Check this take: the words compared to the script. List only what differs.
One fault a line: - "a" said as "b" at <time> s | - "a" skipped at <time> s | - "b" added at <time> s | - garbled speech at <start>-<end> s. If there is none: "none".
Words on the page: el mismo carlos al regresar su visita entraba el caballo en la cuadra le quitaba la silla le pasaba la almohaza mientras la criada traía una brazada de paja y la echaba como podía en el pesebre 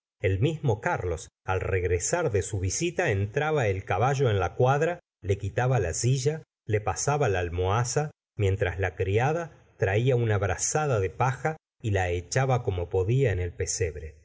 - "de" added at 2.3 s